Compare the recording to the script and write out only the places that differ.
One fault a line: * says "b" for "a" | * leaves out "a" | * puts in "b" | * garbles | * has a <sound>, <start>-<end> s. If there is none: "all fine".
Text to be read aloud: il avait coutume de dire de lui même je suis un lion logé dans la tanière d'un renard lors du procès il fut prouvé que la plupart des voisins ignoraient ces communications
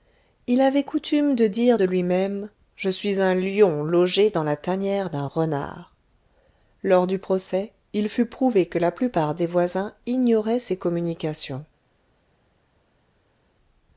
all fine